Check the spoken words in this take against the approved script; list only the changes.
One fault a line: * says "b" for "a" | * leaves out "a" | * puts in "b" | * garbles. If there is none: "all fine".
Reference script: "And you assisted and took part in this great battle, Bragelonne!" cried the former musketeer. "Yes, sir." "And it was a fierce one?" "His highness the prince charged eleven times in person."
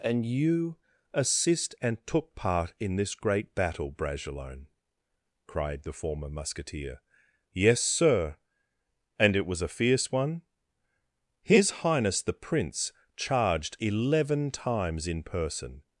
* says "assist" for "assisted"